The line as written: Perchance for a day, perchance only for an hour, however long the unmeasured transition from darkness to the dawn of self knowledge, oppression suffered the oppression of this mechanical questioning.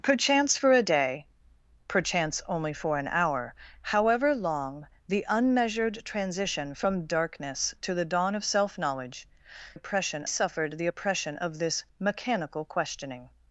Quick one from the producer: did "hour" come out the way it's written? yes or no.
yes